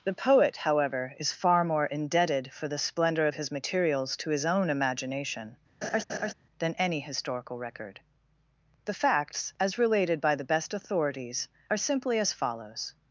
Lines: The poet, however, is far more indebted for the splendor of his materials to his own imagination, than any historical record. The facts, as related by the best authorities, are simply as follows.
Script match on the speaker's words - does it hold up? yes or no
yes